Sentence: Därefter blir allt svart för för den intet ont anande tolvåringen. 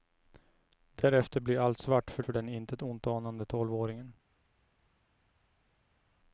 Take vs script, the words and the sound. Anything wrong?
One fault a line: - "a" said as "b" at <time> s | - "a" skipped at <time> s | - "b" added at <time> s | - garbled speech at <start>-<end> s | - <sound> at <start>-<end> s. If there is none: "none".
none